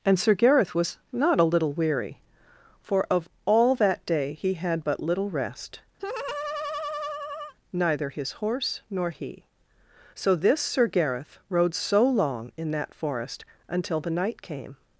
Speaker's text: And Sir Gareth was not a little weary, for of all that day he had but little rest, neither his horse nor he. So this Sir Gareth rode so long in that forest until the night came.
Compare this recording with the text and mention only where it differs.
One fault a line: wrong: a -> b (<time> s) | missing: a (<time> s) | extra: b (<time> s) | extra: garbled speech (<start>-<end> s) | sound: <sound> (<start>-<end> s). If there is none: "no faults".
sound: laugh (6.0-7.5 s)